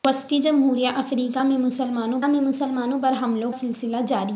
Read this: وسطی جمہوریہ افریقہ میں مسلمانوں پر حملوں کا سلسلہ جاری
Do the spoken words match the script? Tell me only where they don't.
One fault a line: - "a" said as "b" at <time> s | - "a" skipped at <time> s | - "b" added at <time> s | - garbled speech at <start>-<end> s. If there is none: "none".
- "میں مسلمانوں" added at 2.3 s
- "کا" skipped at 3.5 s